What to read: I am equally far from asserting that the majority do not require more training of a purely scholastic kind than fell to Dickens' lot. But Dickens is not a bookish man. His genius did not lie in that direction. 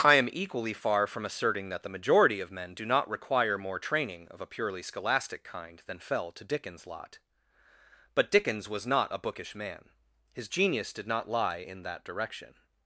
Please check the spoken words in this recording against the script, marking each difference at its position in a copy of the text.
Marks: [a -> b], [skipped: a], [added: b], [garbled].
I am equally far from asserting that the majority [added: of men] do not require more training of a purely scholastic kind than fell to Dickens' lot. But Dickens [is -> was] not a bookish man. His genius did not lie in that direction.